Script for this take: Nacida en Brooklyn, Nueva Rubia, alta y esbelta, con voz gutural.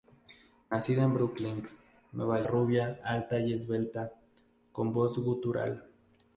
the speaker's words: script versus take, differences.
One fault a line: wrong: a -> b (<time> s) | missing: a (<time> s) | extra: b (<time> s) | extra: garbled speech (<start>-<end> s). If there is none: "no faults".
no faults